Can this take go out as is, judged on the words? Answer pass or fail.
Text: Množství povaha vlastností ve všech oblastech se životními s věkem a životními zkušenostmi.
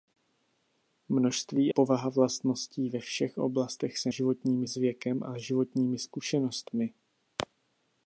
pass